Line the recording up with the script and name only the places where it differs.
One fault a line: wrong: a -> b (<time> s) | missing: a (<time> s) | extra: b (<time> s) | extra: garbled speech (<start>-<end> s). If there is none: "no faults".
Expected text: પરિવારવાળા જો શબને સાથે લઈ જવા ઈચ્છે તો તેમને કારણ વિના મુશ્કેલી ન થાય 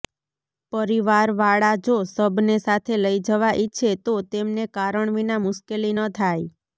no faults